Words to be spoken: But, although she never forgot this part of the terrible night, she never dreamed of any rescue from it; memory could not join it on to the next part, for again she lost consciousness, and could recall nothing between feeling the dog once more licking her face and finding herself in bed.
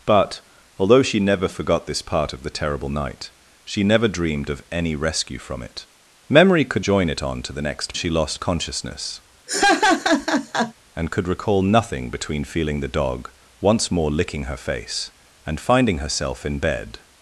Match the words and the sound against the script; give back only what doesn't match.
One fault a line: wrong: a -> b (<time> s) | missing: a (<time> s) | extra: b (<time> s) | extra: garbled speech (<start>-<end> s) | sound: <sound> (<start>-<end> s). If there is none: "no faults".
missing: not (6.8 s)
missing: part for again (7.9 s)
sound: laugh (9.5-10.7 s)